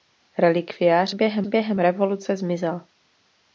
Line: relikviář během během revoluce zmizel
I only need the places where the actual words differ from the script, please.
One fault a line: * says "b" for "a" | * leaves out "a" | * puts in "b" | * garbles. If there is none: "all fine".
all fine